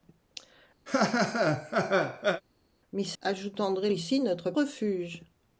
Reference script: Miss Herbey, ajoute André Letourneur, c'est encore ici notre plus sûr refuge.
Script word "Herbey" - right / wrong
wrong